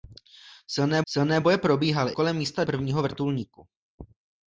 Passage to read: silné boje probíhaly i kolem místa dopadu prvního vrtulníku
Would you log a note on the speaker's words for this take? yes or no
yes